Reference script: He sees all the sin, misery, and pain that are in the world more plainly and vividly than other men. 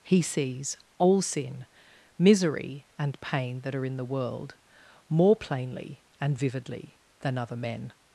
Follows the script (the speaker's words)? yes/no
no